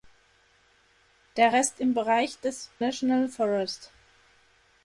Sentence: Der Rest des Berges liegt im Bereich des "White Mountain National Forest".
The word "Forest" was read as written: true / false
true